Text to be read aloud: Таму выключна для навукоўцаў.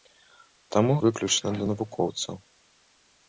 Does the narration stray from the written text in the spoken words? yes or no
no